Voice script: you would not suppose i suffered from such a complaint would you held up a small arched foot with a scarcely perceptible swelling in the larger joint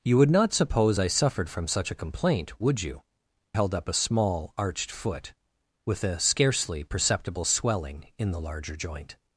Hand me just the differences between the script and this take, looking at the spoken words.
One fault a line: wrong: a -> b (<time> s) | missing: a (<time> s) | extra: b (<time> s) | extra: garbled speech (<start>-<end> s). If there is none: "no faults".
no faults